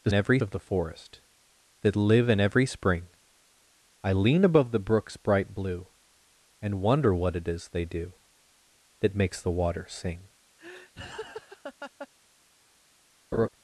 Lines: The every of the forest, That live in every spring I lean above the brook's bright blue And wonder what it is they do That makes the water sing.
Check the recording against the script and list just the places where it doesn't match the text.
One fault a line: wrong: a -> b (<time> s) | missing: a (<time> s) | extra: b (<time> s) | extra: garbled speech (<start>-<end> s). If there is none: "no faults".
no faults